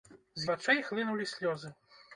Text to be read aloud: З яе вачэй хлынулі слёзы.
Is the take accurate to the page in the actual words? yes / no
no